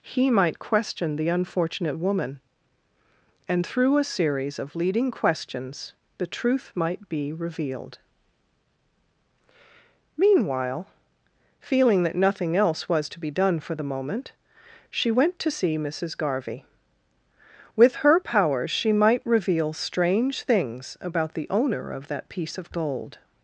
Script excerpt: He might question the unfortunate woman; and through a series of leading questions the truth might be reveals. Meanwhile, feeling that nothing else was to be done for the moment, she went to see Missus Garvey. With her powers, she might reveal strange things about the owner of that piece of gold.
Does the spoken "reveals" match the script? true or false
false